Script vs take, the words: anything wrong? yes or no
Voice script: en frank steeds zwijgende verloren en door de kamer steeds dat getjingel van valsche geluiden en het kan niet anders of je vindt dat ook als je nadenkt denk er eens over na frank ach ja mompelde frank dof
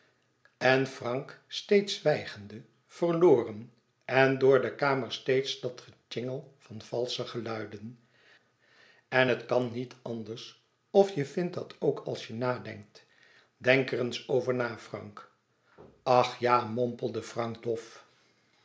no